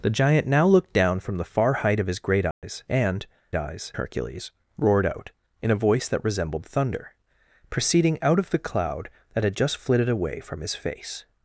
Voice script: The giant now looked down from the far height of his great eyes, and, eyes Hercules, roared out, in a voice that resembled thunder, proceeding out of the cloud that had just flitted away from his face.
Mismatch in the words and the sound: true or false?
true